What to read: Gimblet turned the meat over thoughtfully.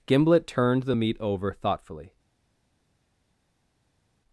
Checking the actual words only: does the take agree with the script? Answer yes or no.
yes